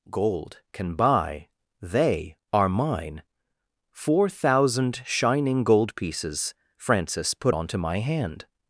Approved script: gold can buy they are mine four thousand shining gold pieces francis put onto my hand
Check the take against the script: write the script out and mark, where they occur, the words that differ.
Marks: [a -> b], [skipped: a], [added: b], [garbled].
gold can buy they are mine four thousand shining gold pieces francis put onto my hand